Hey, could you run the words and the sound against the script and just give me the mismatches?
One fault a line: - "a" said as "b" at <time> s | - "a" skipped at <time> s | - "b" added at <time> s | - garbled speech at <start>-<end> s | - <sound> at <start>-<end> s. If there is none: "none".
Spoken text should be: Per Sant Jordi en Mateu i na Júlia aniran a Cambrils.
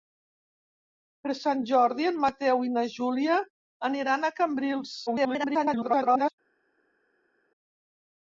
- garbled speech at 5.1-6.3 s